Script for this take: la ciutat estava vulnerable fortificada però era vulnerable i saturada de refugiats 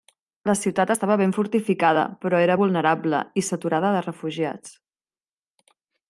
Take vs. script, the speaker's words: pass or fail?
fail